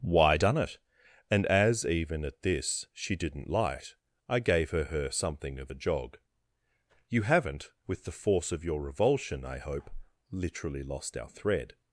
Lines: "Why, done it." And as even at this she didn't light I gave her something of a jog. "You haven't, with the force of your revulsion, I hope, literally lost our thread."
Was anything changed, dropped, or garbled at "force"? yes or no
no